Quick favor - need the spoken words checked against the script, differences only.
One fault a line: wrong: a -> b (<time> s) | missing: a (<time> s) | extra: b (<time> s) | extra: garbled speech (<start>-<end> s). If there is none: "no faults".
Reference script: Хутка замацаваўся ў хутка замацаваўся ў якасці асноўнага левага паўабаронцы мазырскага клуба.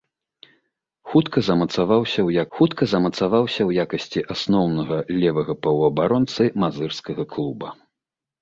no faults